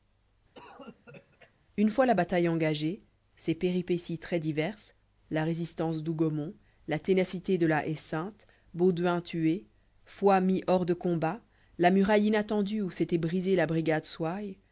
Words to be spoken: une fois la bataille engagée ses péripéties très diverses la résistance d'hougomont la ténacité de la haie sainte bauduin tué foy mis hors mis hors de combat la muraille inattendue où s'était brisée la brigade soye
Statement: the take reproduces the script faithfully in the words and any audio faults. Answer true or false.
false